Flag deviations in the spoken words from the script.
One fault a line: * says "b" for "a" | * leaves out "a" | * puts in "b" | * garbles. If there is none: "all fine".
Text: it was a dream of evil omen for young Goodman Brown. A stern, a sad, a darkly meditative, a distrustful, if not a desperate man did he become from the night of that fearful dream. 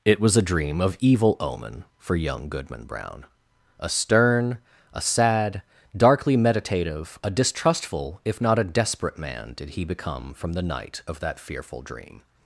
* leaves out "a"